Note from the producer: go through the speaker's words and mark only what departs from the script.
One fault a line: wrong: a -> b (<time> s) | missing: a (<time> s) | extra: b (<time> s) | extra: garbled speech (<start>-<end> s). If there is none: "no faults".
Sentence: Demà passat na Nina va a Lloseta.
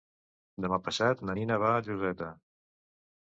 no faults